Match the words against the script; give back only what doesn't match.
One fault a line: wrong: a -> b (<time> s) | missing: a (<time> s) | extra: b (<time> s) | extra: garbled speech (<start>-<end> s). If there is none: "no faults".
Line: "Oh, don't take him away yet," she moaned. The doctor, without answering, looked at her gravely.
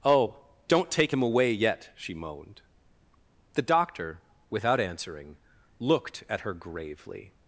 no faults